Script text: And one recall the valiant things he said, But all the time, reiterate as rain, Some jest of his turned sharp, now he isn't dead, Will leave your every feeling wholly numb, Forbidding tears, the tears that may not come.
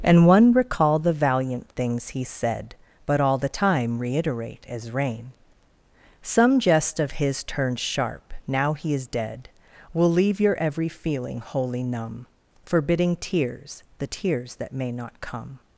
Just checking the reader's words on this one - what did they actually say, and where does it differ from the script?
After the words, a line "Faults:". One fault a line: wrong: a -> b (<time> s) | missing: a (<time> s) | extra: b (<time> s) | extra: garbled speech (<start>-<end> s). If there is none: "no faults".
And one recall the valiant things he said, But all the time, reiterate as rain, Some jest of his turned sharp, now he is dead, Will leave your every feeling wholly numb, Forbidding tears, the tears that may not come.
Faults:
wrong: isn't -> is (8.9 s)